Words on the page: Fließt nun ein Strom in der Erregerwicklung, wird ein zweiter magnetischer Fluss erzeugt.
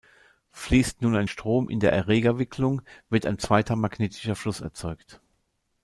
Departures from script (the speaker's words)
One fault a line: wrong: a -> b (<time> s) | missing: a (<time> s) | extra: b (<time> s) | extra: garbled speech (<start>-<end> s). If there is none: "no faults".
no faults